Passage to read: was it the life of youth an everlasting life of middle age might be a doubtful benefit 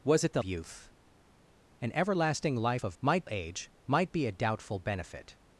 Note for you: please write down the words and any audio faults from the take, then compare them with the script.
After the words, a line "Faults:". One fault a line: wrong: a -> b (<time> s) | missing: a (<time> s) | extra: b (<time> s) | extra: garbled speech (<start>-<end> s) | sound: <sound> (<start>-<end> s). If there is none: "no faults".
was it the youth an everlasting life of might age might be a doubtful benefit
Faults:
missing: life of (0.4 s)
wrong: middle -> might (3.0 s)